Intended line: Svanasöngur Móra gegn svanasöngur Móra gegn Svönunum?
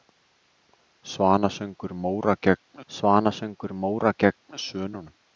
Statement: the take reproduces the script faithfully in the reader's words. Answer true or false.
true